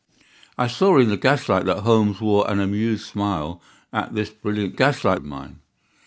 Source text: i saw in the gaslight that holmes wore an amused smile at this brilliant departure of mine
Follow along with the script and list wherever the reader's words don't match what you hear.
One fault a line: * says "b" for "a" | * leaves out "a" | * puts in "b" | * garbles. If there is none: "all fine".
* says "gaslight" for "departure"